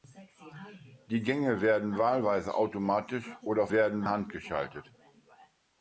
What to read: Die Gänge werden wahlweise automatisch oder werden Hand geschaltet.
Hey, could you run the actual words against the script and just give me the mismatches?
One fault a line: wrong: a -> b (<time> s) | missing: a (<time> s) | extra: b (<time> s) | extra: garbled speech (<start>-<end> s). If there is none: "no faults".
no faults